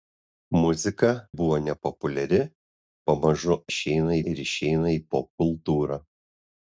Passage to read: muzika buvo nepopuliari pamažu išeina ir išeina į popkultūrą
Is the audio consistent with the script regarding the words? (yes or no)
yes